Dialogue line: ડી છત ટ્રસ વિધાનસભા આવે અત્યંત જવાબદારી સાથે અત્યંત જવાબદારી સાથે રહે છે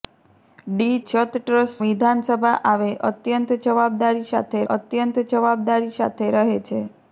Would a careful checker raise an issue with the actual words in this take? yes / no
no